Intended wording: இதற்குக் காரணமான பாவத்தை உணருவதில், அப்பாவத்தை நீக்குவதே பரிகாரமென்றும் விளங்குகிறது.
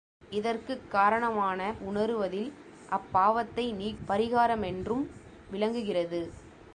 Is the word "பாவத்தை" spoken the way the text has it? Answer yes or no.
no